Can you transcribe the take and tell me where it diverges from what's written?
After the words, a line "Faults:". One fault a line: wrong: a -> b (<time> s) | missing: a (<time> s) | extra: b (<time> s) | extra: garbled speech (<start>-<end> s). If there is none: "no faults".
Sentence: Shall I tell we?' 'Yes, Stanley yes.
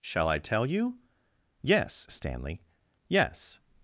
Shall I tell you?' 'Yes, Stanley yes.
Faults:
wrong: we -> you (0.7 s)